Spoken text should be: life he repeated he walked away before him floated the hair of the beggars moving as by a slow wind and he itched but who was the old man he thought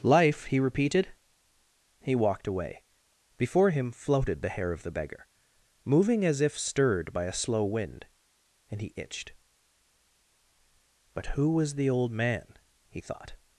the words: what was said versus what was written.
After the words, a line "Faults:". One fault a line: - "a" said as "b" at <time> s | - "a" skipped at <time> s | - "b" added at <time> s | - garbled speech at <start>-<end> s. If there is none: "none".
life he repeated he walked away before him floated the hair of the beggar moving as if stirred by a slow wind and he itched but who was the old man he thought
Faults:
- "beggars" said as "beggar" at 4.9 s
- "if stirred" added at 6.4 s